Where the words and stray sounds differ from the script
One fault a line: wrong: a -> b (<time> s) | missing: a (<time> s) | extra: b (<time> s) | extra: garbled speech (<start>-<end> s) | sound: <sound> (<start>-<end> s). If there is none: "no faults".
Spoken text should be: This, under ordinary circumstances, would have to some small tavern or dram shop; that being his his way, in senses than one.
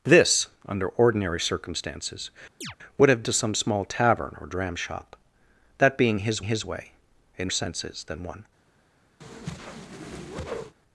sound: chirp (2.6-2.8 s)
sound: whoosh (9.2-10.8 s)